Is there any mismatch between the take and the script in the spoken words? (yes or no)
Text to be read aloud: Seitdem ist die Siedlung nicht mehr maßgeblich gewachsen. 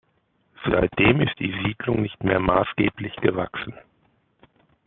no